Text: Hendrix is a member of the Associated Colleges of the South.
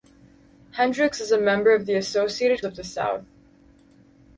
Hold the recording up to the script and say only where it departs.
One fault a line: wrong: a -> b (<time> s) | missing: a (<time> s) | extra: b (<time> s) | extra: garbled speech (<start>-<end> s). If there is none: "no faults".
missing: Colleges (2.6 s)